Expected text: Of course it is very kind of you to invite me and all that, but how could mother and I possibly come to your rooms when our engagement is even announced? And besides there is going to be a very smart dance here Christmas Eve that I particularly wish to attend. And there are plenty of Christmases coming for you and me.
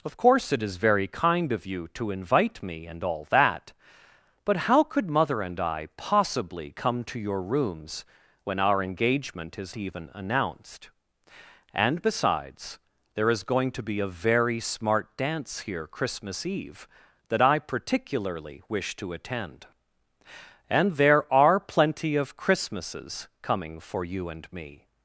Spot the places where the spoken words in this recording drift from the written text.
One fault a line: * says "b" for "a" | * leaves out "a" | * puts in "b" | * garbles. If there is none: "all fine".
all fine